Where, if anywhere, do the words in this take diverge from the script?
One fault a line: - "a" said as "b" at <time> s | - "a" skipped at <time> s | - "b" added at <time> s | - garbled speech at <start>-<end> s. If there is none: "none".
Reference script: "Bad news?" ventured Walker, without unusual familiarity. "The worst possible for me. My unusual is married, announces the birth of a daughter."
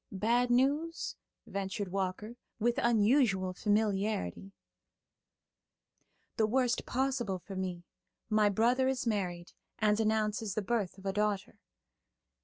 - "without" said as "with" at 2.6 s
- "unusual" said as "brother" at 8.5 s
- "and" added at 9.8 s